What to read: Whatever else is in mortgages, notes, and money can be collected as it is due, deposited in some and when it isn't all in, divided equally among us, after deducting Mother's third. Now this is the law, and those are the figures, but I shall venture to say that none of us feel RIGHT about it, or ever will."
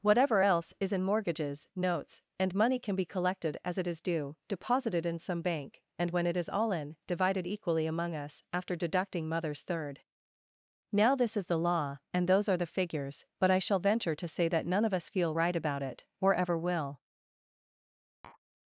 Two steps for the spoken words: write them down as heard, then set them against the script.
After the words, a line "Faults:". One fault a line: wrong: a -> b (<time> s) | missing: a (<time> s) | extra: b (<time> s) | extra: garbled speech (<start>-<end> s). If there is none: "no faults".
Whatever else is in mortgages, notes, and money can be collected as it is due, deposited in some bank, and when it is all in, divided equally among us, after deducting Mother's third. Now this is the law, and those are the figures, but I shall venture to say that none of us feel RIGHT about it, or ever will."
Faults:
extra: bank (5.4 s)
wrong: isn't -> is (6.4 s)